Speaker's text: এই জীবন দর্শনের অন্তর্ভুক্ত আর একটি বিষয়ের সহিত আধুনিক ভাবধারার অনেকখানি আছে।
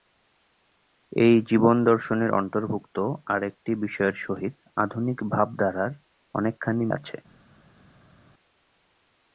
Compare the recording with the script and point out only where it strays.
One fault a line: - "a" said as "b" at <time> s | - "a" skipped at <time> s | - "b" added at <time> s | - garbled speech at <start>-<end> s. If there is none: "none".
none